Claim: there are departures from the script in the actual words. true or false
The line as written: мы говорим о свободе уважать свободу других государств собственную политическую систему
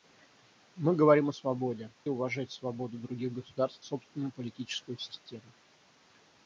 false